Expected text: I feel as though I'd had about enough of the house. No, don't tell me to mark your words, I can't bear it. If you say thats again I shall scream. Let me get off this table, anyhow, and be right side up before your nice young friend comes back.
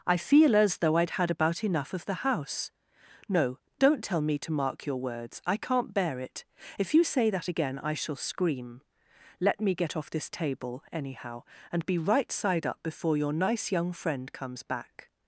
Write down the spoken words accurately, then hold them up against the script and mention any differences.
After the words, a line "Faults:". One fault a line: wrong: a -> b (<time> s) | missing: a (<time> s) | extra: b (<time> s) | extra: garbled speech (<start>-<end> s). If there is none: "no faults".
I feel as though I'd had about enough of the house. No, don't tell me to mark your words, I can't bear it. If you say that again I shall scream. Let me get off this table, anyhow, and be right side up before your nice young friend comes back.
Faults:
wrong: thats -> that (7.3 s)